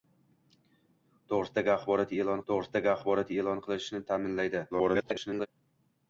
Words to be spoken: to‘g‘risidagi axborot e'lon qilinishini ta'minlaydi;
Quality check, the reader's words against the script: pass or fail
fail